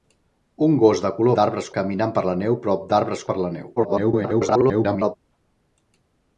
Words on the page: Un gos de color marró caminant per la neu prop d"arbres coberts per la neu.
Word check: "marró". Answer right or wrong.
wrong